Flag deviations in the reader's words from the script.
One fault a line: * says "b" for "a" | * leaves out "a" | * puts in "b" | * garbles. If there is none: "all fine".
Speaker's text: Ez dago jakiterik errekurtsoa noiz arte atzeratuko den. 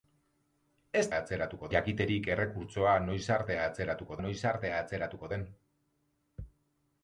* says "atzeratuko" for "dago"
* puts in "noiz arte atzeratuko"